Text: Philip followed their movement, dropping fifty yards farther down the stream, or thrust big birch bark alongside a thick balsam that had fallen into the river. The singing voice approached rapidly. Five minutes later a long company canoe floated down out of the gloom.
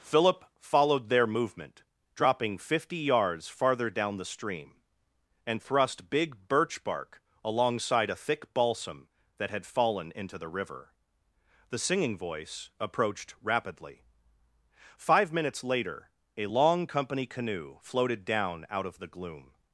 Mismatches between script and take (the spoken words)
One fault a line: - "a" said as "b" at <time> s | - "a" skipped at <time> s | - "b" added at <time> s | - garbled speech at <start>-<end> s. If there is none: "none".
- "or" said as "and" at 5.5 s